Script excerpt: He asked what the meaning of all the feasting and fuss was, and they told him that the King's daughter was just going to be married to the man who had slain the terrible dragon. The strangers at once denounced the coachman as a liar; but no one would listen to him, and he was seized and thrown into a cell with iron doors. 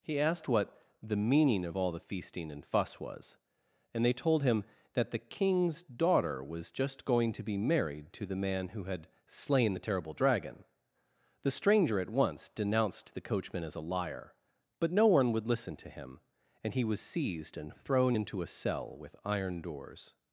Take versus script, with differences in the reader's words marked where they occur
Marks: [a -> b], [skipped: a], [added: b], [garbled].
He asked what the meaning of all the feasting and fuss was, and they told him that the King's daughter was just going to be married to the man who had slain the terrible dragon. The [strangers -> stranger] at once denounced the coachman as a liar; but no one would listen to him, and he was seized and thrown into a cell with iron doors.